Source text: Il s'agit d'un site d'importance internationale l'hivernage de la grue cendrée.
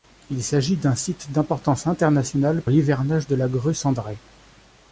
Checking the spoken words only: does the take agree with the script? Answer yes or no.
yes